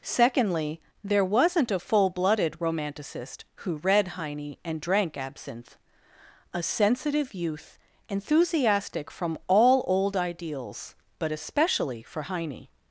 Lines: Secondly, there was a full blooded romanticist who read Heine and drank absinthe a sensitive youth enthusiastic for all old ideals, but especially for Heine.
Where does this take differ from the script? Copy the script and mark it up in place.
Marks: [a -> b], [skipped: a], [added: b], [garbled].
Secondly, there [was -> wasn't] a full blooded romanticist who read Heine and drank absinthe a sensitive youth enthusiastic [for -> from] all old ideals, but especially for Heine.